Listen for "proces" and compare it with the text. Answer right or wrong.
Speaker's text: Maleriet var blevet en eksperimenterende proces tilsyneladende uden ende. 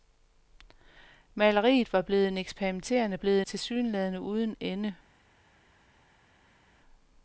wrong